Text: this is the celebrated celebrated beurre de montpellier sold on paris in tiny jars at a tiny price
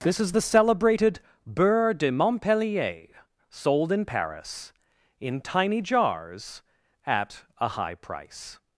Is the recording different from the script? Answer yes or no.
yes